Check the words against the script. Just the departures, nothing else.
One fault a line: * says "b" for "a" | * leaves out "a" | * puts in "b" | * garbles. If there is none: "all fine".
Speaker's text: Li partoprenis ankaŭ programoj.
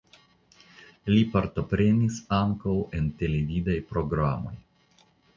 * puts in "en televidaj"